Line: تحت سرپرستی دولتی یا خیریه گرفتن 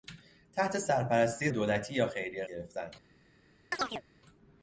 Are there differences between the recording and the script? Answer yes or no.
no